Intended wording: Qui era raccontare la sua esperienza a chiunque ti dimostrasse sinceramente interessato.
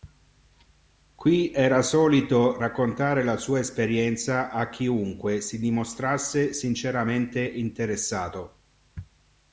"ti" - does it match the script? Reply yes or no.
no